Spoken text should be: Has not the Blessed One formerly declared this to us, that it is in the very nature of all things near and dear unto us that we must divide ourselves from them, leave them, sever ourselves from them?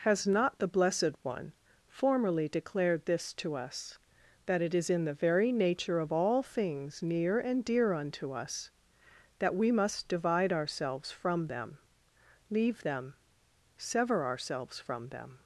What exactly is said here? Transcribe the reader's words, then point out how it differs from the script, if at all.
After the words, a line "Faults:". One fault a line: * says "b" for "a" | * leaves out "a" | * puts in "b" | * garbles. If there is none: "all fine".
Has not the Blessed One formerly declared this to us, that it is in the very nature of all things near and dear unto us that we must divide ourselves from them, leave them, sever ourselves from them?
Faults:
all fine